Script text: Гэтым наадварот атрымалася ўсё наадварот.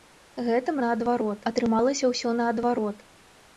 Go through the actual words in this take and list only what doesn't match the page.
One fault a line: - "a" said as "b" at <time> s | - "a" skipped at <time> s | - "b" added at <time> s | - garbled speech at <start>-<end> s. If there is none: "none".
none